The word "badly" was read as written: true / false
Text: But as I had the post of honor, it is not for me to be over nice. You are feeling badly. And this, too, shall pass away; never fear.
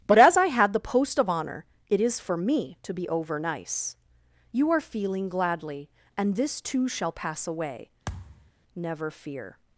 false